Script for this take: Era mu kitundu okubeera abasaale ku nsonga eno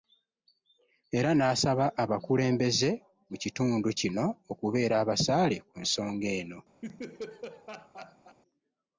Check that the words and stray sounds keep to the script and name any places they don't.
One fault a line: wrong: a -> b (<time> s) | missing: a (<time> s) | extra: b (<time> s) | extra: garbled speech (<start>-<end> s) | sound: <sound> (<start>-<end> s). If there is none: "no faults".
extra: n'asaba abakulembeze (1.4 s)
extra: kino (4.0 s)
sound: laugh (6.8-8.4 s)